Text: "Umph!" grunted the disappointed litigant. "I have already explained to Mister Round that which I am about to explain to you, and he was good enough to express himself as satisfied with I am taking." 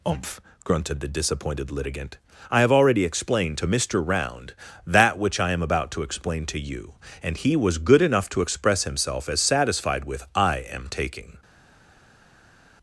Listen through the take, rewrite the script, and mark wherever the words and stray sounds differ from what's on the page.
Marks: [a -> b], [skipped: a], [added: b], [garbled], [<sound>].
"Umph!" grunted the disappointed litigant. "I have already explained to Mister Round that which I am about to explain to you, and he was good enough to express himself as satisfied with I am taking."